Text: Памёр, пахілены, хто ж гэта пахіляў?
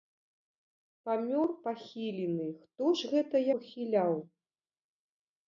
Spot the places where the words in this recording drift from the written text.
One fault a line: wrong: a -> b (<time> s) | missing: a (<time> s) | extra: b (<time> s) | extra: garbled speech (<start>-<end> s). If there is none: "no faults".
no faults